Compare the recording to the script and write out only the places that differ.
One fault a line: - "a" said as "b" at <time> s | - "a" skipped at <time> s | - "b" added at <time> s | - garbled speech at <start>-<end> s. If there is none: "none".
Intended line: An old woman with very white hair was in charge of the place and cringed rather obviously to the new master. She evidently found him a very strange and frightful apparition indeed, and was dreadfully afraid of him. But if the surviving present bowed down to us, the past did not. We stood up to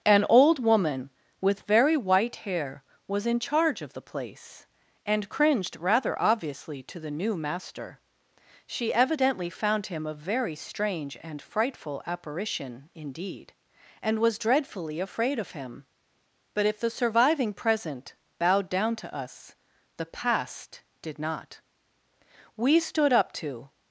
none